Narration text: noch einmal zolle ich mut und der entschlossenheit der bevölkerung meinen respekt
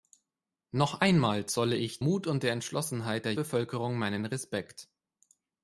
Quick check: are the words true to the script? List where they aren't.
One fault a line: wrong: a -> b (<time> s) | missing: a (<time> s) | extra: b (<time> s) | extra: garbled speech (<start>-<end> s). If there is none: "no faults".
no faults